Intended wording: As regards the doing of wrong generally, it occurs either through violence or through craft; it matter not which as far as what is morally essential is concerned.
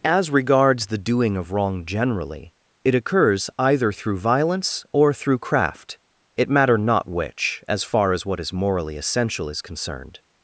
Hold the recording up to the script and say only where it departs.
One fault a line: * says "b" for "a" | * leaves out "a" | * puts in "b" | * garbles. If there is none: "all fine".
all fine